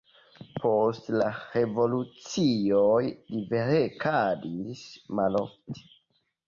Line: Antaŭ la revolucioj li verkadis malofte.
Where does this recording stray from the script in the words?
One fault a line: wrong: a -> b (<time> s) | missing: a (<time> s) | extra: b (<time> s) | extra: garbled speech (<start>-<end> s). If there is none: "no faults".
wrong: Antaŭ -> Post (0.6 s)